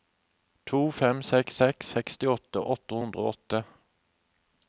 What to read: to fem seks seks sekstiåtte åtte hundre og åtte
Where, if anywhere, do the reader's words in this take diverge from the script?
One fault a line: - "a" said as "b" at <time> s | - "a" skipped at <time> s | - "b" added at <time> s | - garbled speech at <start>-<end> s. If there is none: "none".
none